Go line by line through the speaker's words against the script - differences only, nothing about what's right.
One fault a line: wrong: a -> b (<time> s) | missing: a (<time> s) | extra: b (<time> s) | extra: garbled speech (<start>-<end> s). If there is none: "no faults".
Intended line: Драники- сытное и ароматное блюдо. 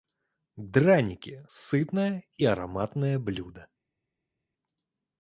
no faults